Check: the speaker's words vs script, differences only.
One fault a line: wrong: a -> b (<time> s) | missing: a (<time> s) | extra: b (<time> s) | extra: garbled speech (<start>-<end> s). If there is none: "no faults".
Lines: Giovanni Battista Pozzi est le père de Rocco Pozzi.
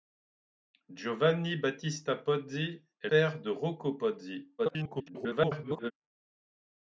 missing: le (3.1 s)
extra: garbled speech (4.6-5.9 s)